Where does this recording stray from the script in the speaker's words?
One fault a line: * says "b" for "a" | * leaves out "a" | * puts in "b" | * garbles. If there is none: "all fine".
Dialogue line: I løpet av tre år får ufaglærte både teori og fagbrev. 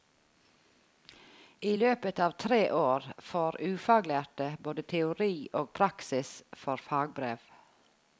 * puts in "praksis for"